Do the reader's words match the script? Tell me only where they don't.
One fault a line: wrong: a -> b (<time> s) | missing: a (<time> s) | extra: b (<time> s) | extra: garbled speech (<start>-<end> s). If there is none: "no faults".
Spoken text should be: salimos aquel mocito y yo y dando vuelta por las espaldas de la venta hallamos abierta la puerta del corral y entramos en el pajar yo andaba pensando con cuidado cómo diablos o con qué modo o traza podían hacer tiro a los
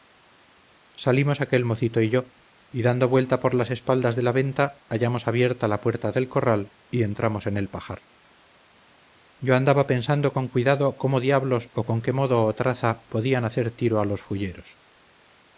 no faults